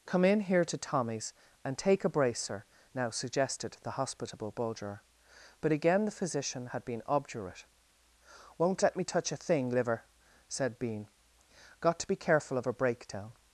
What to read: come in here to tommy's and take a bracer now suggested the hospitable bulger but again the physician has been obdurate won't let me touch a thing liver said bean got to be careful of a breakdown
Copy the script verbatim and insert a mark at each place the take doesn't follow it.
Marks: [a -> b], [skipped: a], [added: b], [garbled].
come in here to tommy's and take a bracer now suggested the hospitable bulger but again the physician [has -> had] been obdurate won't let me touch a thing liver said bean got to be careful of a breakdown